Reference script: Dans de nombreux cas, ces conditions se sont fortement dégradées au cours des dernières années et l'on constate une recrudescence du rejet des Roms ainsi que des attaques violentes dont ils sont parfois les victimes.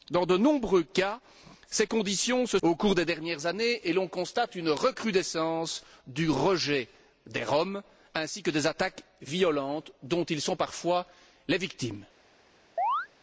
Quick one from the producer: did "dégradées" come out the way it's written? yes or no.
no